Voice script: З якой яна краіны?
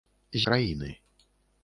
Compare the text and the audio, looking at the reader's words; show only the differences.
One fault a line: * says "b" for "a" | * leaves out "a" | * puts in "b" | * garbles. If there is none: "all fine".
* leaves out "якой яна"